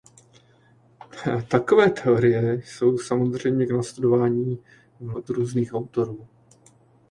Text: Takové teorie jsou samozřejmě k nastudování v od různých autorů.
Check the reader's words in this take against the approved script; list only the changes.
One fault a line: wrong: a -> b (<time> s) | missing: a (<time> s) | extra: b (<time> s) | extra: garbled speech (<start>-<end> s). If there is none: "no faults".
no faults